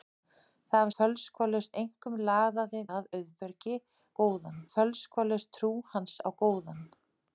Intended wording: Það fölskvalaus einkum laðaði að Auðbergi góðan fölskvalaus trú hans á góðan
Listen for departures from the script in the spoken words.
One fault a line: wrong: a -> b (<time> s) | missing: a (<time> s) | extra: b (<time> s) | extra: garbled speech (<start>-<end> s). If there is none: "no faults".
no faults